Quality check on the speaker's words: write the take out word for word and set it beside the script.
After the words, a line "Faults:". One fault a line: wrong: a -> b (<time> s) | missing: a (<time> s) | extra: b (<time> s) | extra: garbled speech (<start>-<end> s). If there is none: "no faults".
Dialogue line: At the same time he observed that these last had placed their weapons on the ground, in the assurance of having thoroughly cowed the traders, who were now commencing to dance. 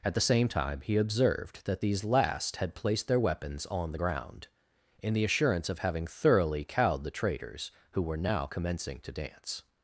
At the same time he observed that these last had placed their weapons on the ground, in the assurance of having thoroughly cowed the traders, who were now commencing to dance.
Faults:
no faults